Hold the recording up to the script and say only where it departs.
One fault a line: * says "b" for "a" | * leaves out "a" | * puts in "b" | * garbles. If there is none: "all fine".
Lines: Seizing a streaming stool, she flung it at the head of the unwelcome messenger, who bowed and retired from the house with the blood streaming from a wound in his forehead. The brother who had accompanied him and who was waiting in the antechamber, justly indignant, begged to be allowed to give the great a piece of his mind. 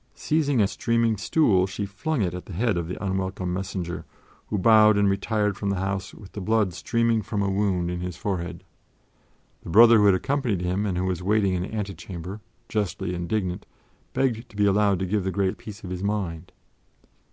all fine